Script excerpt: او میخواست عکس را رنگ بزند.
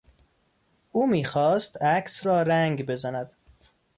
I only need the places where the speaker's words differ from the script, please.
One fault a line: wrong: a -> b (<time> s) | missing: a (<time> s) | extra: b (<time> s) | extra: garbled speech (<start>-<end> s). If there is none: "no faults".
no faults